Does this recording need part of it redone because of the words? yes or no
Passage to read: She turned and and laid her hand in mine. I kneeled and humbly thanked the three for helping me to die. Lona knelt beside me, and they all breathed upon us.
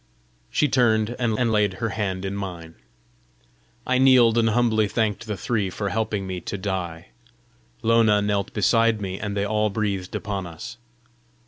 no